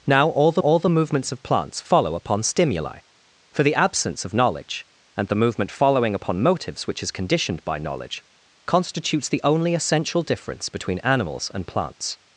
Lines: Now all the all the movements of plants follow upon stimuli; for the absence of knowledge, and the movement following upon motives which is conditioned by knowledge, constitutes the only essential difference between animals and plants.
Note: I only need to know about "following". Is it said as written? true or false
true